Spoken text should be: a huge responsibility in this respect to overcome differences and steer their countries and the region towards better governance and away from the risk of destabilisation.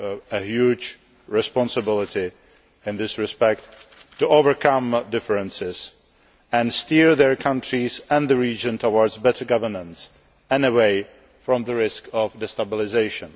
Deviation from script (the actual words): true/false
false